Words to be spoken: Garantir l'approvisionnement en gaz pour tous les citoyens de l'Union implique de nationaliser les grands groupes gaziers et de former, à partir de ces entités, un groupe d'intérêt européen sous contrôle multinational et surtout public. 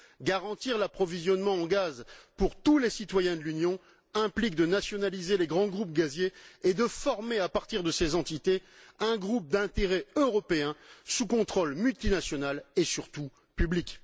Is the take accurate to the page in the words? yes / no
yes